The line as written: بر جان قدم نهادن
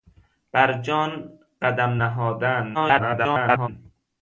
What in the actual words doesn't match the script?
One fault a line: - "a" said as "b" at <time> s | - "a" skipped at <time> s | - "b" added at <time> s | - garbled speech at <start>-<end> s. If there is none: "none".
- garbled speech at 2.7-3.7 s